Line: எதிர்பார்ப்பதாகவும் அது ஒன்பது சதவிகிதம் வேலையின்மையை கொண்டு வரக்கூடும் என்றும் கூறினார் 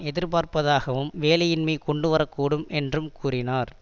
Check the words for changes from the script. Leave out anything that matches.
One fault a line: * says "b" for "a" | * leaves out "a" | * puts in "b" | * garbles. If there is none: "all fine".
* leaves out "அது ஒன்பது சதவிகிதம்"